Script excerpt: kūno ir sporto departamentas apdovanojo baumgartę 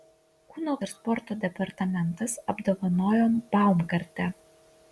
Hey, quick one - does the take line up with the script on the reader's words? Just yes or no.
yes